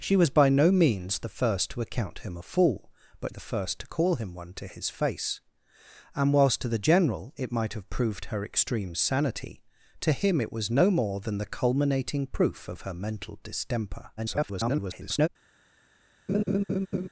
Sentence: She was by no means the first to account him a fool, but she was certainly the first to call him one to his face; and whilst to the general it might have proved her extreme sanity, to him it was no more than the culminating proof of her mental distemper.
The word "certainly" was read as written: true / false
false